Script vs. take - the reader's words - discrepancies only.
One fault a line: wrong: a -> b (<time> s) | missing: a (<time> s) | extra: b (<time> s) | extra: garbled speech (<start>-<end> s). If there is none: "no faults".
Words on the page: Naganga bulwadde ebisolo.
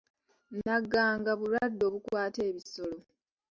extra: obukwata (1.9 s)